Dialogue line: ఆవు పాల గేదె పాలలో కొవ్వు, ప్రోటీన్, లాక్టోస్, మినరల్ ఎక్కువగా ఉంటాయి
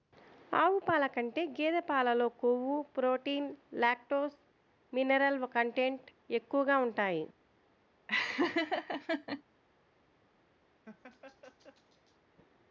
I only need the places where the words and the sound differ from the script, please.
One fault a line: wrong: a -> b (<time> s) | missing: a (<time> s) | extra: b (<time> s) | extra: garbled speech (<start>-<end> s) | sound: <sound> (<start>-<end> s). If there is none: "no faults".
extra: కంటే (1.1 s)
extra: కంటెంట్ (5.5 s)
sound: laugh (8.1-9.4 s)
sound: laugh (10.9-12.2 s)